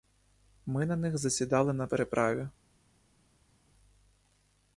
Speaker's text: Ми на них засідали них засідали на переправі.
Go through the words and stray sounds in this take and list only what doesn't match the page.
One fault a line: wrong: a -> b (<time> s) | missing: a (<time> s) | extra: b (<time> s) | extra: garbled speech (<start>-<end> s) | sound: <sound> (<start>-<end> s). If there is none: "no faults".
missing: них засідали (1.7 s)